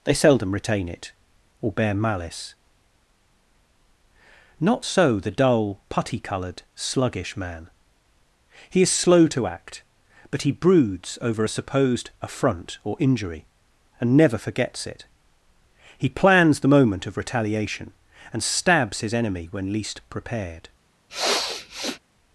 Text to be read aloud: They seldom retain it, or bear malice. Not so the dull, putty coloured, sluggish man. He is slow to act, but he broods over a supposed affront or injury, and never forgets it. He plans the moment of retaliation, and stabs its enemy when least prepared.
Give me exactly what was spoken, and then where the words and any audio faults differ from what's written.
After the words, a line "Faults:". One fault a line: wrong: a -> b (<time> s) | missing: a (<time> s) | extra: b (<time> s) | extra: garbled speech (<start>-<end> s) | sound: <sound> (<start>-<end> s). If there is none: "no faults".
They seldom retain it, or bear malice. Not so the dull, putty coloured, sluggish man. He is slow to act, but he broods over a supposed affront or injury, and never forgets it. He plans the moment of retaliation, and stabs his enemy when least prepared.
Faults:
wrong: its -> his (19.0 s)
sound: sniff (21.1-22.0 s)